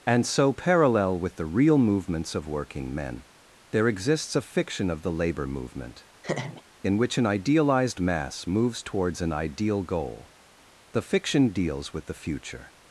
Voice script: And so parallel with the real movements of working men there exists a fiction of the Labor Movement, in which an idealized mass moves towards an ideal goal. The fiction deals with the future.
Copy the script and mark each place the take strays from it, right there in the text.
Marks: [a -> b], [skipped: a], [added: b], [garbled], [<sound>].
And so parallel with the real movements of working men there exists a fiction of the Labor Movement, [laugh] in which an idealized mass moves towards an ideal goal. The fiction deals with the future.